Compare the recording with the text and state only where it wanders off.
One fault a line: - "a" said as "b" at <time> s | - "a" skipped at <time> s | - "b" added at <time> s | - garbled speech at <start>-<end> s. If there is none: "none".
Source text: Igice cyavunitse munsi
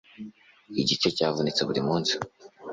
- "buri" added at 1.7 s